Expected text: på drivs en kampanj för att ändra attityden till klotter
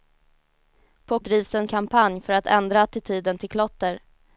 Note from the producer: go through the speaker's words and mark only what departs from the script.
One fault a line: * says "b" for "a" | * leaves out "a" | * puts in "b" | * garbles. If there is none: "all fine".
all fine